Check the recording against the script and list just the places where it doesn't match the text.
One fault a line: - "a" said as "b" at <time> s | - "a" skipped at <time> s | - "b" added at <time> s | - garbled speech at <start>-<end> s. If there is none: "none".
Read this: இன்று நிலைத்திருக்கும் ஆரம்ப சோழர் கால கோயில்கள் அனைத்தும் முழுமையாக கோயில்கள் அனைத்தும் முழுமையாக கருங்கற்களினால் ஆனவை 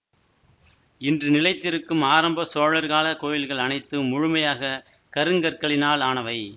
- "கோயில்கள் அனைத்தும் முழுமையாக" skipped at 4.7 s